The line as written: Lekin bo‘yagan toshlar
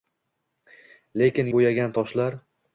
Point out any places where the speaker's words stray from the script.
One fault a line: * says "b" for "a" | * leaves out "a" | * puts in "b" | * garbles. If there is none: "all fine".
all fine